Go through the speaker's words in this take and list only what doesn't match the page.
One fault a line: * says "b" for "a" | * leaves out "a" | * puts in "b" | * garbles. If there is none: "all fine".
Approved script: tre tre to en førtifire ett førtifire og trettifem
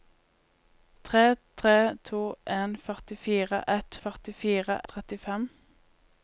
all fine